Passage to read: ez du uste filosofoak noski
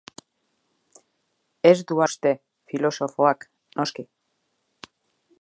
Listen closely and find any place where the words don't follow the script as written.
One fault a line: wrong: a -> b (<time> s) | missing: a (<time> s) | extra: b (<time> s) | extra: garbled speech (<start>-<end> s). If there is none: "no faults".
no faults